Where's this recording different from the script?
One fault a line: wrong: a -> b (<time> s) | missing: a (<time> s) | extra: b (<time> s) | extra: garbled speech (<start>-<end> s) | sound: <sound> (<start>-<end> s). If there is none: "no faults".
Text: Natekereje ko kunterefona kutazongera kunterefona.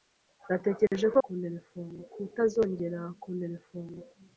sound: dropout (0.9-0.9 s)